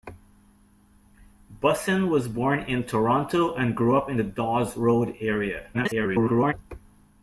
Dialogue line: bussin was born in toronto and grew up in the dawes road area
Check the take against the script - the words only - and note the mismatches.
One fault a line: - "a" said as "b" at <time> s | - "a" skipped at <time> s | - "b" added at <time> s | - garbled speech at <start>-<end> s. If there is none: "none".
- garbled speech at 5.7-6.5 s